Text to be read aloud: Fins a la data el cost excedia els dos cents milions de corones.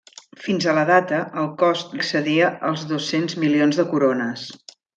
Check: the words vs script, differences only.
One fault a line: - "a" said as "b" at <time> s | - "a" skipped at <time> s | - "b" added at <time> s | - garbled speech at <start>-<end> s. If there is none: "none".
none